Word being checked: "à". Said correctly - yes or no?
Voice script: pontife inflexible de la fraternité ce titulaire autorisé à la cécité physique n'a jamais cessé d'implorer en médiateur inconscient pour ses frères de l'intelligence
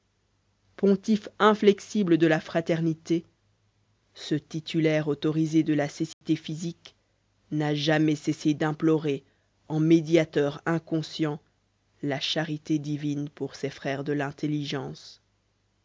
no